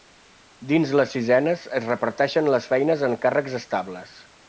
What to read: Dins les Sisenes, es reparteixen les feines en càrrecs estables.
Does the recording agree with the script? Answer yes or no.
yes